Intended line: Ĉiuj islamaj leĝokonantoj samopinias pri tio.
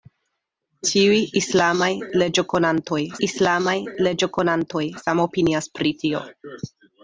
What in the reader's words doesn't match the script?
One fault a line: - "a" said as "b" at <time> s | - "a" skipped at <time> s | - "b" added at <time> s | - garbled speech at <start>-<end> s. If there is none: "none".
- "islamaj leĝokonantoj" added at 3.3 s